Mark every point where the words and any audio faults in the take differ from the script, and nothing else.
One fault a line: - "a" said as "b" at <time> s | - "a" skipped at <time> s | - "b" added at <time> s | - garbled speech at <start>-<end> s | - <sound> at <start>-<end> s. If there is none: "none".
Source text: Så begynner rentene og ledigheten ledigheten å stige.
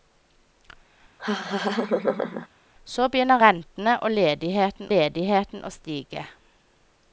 - laugh at 1.2-2.5 s